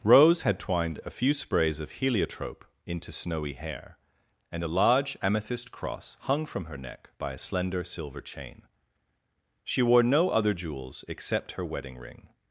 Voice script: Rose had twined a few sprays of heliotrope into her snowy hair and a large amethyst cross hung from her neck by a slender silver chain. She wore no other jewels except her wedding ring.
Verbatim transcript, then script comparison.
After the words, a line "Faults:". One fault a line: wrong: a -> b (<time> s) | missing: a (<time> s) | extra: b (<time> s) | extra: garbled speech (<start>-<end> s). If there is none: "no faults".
Rose had twined a few sprays of heliotrope into snowy hair and a large amethyst cross hung from her neck by a slender silver chain. She wore no other jewels except her wedding ring.
Faults:
missing: her (3.1 s)